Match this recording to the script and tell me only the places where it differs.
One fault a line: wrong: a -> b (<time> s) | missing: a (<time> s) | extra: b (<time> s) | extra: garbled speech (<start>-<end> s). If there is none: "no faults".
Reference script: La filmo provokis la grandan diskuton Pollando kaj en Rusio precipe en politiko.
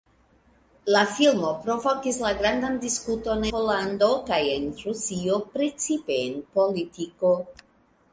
no faults